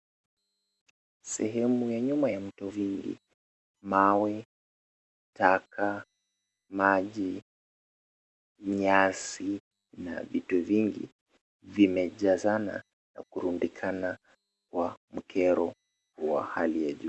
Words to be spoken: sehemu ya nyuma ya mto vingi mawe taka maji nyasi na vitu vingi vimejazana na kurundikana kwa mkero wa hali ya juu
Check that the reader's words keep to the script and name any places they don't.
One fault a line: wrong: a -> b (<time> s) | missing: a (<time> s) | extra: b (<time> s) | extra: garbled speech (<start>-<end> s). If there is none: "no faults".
no faults